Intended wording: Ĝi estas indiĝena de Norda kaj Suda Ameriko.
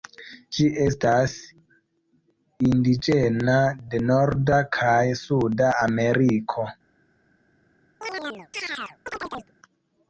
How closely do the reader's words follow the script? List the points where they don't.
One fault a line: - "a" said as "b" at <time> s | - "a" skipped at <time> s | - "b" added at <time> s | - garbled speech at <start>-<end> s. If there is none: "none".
none